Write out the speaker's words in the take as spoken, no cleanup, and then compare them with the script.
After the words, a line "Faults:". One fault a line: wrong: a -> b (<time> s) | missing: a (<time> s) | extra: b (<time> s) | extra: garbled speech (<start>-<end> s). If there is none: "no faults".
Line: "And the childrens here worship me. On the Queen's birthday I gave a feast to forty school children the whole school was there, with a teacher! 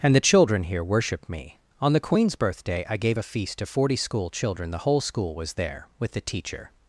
"And the children here worship me. On the Queen's birthday I gave a feast to forty school children the whole school was there, with the teacher!
Faults:
wrong: childrens -> children (0.2 s)
wrong: a -> the (6.1 s)